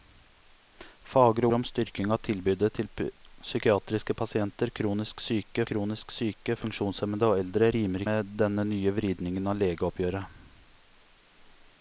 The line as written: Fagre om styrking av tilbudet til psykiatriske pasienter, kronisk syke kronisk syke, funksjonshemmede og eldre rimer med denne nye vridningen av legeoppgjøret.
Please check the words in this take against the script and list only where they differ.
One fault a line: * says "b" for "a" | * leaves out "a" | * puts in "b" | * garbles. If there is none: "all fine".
all fine